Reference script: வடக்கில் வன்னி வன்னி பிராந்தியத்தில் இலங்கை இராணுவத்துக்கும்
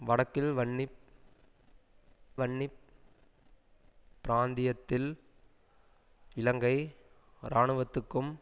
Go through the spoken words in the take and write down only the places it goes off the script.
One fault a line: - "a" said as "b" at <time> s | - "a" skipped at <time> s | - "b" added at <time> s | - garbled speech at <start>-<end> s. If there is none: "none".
none